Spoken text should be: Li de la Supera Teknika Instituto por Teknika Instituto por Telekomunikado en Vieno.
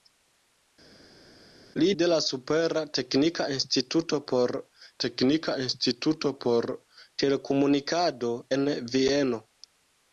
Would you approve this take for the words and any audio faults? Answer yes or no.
yes